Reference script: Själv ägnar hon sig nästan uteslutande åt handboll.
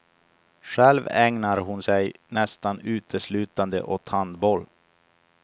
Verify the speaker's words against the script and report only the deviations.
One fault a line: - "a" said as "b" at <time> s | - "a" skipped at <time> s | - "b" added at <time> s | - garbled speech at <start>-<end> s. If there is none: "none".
none